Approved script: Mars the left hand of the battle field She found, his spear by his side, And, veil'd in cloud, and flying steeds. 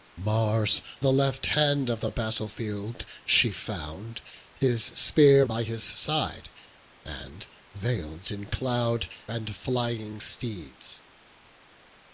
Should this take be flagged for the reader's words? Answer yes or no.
no